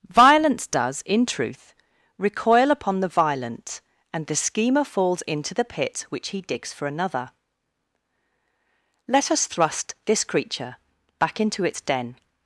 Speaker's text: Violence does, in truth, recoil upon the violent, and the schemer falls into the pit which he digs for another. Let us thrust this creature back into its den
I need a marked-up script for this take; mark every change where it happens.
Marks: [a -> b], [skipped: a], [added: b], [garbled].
Violence does, in truth, recoil upon the violent, and the schemer falls into the pit which he digs for another. Let us thrust this creature back into its den